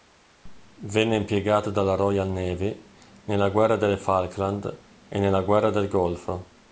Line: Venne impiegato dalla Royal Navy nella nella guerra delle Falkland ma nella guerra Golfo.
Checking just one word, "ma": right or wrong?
wrong